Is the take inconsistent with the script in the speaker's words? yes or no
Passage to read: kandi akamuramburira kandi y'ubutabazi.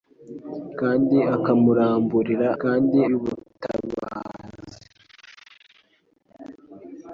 no